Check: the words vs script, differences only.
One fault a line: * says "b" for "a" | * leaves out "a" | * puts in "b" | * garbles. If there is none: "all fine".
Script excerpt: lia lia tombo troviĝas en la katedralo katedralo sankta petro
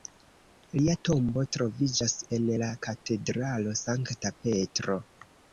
* leaves out "lia"
* leaves out "katedralo"